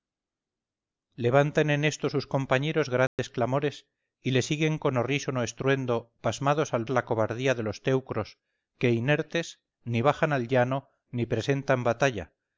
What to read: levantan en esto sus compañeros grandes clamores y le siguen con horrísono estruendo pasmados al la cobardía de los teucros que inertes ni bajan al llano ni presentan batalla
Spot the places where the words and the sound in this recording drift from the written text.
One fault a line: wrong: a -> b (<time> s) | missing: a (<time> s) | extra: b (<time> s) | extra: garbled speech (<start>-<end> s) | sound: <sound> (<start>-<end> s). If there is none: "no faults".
sound: dropout (3.1-3.2 s)